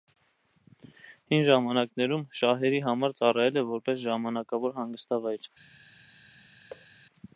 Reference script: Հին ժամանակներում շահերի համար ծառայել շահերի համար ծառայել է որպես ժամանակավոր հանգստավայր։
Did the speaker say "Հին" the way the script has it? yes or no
yes